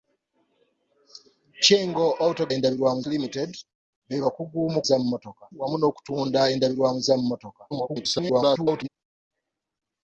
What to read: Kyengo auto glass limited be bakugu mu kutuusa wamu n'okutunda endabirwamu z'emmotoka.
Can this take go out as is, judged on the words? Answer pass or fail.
fail